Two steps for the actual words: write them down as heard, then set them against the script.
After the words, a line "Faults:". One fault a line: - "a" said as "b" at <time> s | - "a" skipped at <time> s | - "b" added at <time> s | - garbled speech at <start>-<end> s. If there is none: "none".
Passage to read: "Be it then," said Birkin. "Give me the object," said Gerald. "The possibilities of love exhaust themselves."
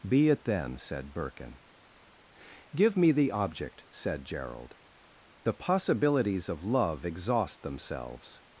"Be it then," said Birkin. "Give me the object," said Gerald. "The possibilities of love exhaust themselves."
Faults:
none